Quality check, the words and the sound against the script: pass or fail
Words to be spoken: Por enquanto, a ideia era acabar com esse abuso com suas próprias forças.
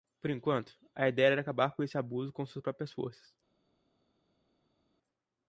pass